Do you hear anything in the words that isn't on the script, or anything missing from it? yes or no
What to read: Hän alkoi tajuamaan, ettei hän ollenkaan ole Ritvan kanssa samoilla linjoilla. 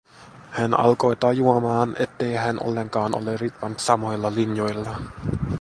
yes